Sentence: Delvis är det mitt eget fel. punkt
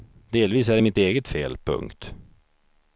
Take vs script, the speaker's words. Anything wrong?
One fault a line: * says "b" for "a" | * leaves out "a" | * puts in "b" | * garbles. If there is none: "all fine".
all fine